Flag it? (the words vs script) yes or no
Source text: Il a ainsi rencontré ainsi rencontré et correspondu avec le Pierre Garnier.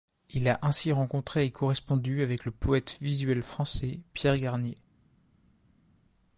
yes